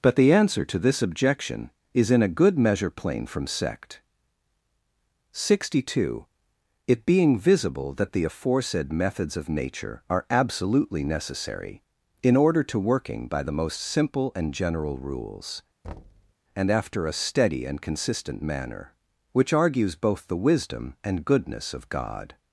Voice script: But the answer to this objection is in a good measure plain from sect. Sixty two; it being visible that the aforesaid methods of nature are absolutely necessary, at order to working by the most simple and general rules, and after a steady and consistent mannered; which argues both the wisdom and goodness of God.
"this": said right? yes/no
yes